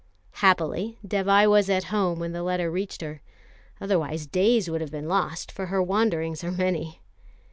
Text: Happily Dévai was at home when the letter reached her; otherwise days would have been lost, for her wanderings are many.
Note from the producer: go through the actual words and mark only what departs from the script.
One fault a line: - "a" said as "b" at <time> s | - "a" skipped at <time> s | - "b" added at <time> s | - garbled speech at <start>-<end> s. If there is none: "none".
none